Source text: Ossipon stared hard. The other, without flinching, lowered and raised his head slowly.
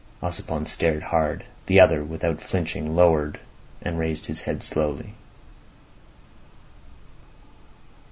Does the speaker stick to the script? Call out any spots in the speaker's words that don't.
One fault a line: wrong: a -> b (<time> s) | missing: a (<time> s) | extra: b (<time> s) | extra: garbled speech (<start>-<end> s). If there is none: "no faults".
no faults